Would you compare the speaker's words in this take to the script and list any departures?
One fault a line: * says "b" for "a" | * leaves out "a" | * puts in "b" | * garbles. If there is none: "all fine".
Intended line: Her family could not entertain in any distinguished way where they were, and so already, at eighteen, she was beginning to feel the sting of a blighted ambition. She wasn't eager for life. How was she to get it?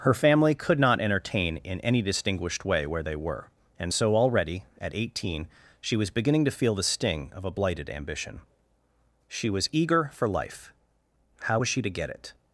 * says "was" for "wasn't"